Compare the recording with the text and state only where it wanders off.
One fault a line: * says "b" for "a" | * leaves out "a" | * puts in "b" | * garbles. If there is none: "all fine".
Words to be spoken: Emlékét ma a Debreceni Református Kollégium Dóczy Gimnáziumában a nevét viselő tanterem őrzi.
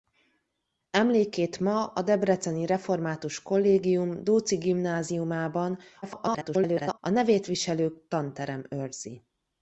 * garbles